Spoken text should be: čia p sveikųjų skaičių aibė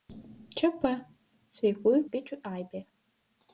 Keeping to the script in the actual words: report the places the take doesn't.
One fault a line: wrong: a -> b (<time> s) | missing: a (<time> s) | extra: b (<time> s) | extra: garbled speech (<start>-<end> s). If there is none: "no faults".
no faults